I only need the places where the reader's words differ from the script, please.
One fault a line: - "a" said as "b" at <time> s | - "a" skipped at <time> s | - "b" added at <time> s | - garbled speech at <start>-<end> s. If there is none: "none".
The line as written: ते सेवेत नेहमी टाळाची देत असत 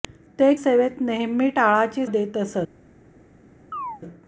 none